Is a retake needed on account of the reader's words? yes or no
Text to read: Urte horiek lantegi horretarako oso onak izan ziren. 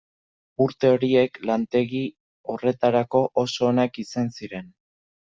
no